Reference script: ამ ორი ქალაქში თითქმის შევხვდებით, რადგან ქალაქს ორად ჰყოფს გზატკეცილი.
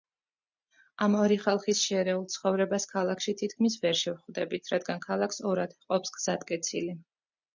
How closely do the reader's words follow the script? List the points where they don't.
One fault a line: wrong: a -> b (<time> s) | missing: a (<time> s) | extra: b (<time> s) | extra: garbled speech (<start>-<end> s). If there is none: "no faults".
extra: ხალხის შერეულ ცხოვრებას (1.4 s)
extra: ვერ (3.8 s)